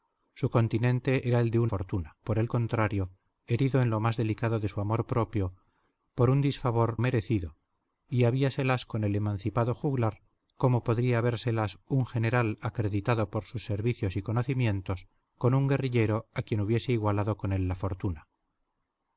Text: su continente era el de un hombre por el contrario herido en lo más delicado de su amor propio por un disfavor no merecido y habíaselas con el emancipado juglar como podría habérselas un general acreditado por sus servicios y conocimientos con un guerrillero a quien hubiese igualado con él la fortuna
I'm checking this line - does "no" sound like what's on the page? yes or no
no